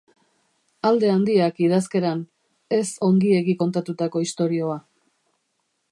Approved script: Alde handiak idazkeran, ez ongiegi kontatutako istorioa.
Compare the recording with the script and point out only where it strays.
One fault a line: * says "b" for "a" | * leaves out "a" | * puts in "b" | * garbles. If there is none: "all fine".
all fine